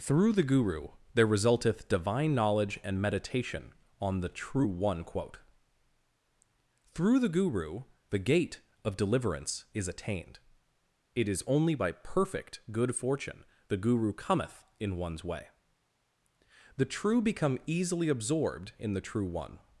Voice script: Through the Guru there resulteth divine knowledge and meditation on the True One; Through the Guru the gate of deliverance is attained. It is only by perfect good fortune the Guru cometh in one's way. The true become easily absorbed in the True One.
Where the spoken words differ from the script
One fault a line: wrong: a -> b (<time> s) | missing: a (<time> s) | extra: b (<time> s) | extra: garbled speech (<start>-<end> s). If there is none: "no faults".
extra: quote (5.0 s)